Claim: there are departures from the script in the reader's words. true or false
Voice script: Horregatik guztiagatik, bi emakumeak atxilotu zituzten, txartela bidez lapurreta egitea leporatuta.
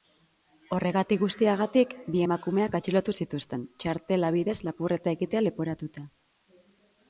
false